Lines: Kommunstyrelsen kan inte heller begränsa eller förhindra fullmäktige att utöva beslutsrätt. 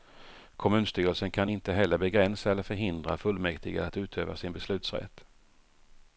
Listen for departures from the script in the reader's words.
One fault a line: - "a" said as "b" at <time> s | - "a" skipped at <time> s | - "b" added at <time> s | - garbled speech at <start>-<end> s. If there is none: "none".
- "sin" added at 4.4 s